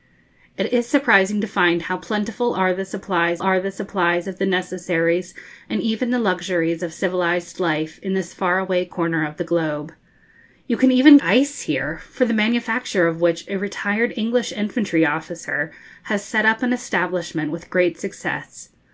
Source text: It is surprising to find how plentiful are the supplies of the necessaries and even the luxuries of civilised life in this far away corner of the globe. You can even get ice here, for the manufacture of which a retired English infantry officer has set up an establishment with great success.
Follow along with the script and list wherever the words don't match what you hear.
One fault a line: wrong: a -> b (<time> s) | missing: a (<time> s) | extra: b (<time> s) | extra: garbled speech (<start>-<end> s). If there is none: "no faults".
extra: are the supplies (3.4 s)
missing: get (11.2 s)